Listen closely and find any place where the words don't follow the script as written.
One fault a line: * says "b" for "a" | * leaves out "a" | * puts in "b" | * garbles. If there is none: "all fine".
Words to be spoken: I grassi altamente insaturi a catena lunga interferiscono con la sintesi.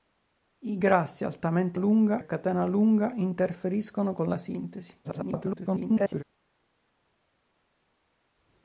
* says "lunga" for "insaturi"
* garbles